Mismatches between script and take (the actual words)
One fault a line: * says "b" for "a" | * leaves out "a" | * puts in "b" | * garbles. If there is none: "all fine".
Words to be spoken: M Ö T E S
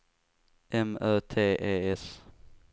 all fine